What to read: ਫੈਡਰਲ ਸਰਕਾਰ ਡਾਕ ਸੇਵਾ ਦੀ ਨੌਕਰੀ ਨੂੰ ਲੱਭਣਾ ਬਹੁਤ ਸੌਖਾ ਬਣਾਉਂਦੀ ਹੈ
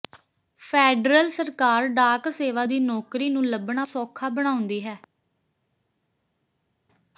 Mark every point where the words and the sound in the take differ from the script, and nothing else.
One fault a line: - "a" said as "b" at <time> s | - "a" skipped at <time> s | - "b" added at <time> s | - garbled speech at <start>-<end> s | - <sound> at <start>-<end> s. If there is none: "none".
- "ਬਹੁਤ" skipped at 3.9 s